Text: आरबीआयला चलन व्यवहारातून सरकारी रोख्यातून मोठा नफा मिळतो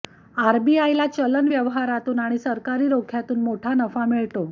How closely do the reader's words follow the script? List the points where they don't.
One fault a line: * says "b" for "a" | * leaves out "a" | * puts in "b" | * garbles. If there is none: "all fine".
* puts in "आणि"